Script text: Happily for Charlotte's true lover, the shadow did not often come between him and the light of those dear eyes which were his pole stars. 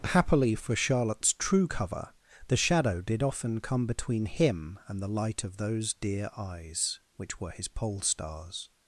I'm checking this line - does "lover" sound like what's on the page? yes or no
no